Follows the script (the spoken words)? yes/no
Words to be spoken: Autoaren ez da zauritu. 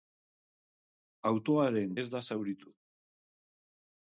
yes